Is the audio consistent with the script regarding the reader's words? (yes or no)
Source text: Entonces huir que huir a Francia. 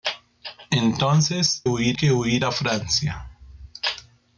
yes